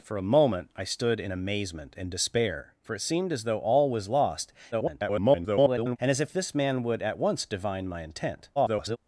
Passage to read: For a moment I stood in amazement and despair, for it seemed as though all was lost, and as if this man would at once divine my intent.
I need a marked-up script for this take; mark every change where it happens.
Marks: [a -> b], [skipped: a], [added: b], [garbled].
For a moment I stood in amazement and despair, for it seemed as though all was lost, [garbled] and as if this man would at once divine my intent. [garbled]